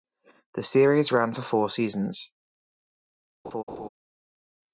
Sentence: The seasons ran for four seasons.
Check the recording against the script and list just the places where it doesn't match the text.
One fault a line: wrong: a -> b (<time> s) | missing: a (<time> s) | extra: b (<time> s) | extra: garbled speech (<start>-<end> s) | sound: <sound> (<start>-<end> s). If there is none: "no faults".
wrong: seasons -> series (0.6 s)
sound: laugh (3.4-3.9 s)